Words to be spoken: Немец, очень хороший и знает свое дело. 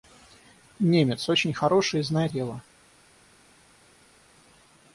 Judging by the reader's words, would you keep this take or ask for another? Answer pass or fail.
fail